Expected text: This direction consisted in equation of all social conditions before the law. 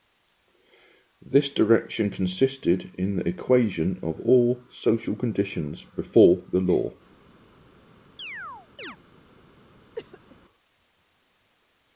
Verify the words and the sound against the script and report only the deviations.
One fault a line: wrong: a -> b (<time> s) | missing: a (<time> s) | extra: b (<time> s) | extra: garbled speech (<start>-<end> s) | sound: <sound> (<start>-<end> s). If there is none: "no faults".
extra: the (3.2 s)
sound: chirp (8.2-9.0 s)
sound: cough (9.9-10.4 s)